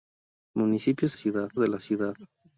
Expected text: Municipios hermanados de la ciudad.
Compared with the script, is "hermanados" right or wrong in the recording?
wrong